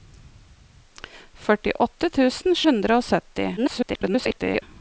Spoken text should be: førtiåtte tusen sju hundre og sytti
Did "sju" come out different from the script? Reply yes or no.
yes